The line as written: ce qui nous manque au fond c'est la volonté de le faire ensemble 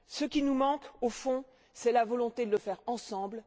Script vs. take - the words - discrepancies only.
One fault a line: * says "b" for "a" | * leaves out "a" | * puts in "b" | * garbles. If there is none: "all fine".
all fine